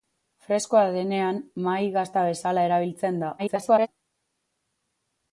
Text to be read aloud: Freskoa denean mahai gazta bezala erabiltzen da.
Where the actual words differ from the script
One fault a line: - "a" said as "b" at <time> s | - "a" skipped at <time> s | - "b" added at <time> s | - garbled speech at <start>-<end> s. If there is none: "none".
- garbled speech at 3.4-3.9 s